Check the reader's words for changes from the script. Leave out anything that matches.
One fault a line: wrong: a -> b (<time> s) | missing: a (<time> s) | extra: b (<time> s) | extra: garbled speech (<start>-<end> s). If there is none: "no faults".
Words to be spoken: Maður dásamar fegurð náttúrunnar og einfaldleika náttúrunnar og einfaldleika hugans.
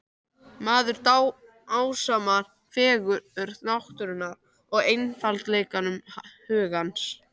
missing: náttúrunnar og einfaldleika (5.8 s)